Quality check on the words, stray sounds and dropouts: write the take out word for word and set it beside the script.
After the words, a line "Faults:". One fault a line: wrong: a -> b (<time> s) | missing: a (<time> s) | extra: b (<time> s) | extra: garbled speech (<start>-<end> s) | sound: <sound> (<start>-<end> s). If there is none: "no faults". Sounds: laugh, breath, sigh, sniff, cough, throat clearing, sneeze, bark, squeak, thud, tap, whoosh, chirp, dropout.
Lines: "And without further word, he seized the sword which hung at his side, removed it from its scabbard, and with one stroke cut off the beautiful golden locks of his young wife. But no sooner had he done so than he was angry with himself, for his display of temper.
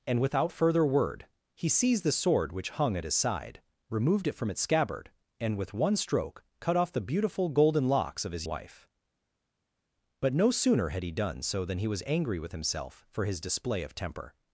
"And without further word, he seized the sword which hung at his side, removed it from its scabbard, and with one stroke cut off the beautiful golden locks of his wife. But no sooner had he done so than he was angry with himself, for his display of temper.
Faults:
missing: young (8.5 s)